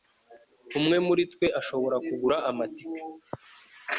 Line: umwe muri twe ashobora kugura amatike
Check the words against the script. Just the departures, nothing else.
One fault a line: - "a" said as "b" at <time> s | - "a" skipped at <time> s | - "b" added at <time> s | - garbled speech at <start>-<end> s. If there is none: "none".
none